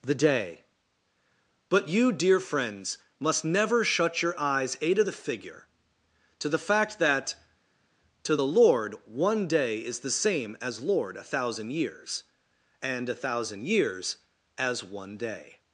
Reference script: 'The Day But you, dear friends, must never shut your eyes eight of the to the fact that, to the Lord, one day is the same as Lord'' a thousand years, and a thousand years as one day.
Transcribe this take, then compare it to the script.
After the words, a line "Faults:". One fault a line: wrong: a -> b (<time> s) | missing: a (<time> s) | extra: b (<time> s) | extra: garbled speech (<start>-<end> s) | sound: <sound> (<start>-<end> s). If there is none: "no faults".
'The Day But you, dear friends, must never shut your eyes a to the figure to the fact that, to the Lord, one day is the same as Lord'' a thousand years, and a thousand years as one day.
Faults:
wrong: eight of -> a to (4.8 s)
extra: figure (5.1 s)